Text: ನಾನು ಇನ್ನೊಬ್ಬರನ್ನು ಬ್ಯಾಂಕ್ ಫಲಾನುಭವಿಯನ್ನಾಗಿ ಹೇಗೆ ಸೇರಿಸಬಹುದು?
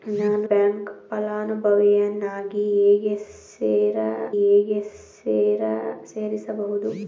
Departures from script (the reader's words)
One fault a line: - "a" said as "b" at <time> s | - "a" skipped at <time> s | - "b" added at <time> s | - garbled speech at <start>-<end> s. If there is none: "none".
- "ಇನ್ನೊಬ್ಬರನ್ನು" skipped at 0.5 s
- "ಹೇಗೆ" added at 4.4 s